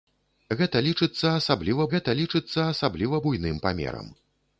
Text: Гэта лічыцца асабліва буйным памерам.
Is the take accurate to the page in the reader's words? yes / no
no